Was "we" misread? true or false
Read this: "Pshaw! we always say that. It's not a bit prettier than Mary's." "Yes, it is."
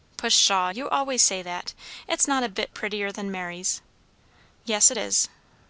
true